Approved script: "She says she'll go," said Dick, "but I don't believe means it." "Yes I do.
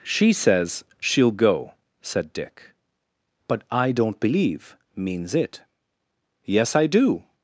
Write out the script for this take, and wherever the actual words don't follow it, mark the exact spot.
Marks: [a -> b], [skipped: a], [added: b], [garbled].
"She says she'll go," said Dick, "but I don't believe means it." "Yes I do.